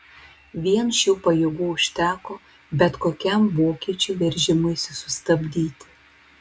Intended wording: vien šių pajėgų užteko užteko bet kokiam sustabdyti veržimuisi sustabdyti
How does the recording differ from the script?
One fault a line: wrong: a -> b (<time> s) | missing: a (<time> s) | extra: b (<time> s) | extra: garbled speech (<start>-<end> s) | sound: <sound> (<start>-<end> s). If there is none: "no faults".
missing: užteko (2.4 s)
wrong: sustabdyti -> vokiečių (3.6 s)